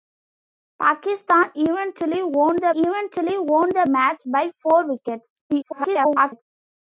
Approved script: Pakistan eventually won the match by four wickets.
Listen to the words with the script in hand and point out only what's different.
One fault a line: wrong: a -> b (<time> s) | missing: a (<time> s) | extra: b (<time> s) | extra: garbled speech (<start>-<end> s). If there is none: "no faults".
extra: eventually won the (2.7 s)
extra: garbled speech (5.5-6.4 s)